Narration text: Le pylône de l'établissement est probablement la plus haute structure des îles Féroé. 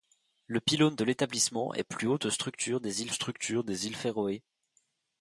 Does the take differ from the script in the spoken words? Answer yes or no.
yes